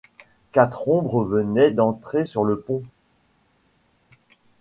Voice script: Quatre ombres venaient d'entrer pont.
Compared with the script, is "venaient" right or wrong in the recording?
right